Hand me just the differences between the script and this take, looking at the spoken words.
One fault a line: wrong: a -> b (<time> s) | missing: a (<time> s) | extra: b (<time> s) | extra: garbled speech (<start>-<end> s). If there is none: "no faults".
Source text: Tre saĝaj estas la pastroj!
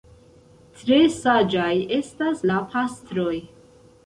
no faults